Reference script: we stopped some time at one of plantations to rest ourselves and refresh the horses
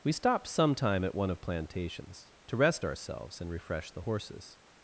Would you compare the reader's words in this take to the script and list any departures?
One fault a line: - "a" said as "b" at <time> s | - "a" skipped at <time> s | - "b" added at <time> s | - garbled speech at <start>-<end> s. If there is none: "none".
none